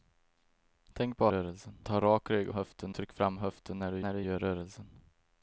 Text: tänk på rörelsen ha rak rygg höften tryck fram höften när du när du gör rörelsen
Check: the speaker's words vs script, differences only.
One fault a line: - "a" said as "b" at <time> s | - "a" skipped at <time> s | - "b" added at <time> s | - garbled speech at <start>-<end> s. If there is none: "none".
none